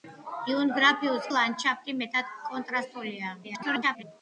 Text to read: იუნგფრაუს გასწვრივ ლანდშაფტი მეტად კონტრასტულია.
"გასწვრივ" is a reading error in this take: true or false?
true